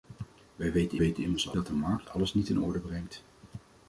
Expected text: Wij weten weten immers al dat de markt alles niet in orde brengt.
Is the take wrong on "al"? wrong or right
right